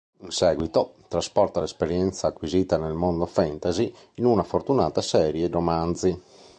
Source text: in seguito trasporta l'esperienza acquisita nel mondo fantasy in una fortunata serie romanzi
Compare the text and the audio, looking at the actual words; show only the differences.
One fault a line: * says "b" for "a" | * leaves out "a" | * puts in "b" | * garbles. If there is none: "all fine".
all fine